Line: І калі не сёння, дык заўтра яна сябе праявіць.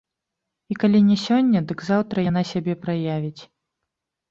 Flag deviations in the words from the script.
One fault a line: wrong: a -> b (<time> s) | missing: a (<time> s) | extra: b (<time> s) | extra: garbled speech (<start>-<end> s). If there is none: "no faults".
no faults